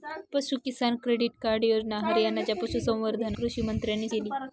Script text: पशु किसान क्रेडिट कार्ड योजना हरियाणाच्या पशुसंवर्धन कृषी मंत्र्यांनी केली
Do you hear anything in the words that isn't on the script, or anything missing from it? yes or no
no